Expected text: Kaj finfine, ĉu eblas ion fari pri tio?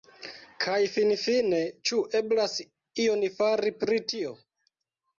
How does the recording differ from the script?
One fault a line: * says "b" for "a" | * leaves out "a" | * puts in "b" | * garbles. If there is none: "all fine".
all fine